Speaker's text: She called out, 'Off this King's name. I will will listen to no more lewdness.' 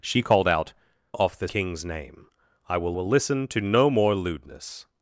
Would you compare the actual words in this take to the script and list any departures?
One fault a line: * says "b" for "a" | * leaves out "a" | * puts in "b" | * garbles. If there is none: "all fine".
all fine